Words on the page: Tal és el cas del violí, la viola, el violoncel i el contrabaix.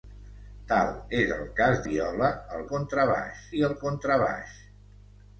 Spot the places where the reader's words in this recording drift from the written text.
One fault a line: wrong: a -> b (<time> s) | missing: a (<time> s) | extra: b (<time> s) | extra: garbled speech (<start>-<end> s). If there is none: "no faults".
missing: del violí la (1.8 s)
wrong: violoncel -> contrabaix (2.7 s)